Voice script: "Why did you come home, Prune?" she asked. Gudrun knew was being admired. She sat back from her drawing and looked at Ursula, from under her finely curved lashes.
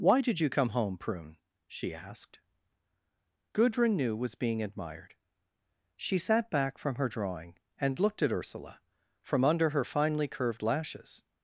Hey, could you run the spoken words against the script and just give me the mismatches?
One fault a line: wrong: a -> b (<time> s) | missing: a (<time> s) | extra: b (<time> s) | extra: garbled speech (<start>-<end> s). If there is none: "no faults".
no faults